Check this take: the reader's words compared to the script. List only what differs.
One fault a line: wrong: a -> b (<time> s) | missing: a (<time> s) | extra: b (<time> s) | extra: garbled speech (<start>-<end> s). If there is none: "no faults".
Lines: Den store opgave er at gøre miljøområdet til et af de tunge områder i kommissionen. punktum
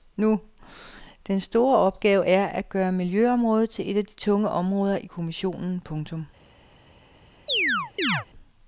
no faults